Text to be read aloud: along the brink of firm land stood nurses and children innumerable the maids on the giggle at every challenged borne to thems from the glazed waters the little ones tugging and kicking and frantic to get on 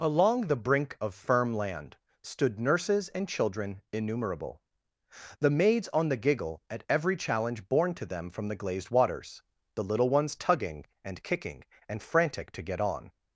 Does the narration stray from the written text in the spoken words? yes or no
yes